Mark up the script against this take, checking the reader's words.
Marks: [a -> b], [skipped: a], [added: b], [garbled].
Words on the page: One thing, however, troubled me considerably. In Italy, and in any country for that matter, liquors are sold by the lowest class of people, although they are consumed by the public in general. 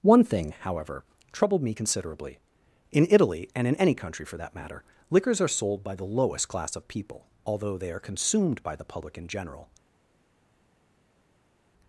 One thing, however, troubled me considerably. In Italy, and in any country for that matter, liquors are sold by the lowest class of people, although they are consumed by the public in general.